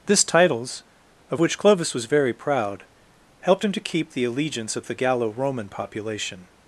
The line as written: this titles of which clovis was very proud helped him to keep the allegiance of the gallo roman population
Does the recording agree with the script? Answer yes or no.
yes